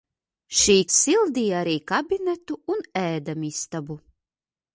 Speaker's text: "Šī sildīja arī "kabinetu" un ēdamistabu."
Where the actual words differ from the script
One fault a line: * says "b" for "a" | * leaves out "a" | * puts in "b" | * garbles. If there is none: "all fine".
all fine